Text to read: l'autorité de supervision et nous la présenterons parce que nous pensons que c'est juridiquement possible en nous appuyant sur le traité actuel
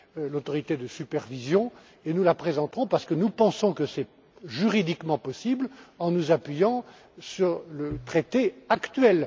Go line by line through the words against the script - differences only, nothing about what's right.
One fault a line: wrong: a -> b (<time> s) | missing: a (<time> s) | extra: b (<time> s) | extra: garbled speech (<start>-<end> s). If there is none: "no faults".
no faults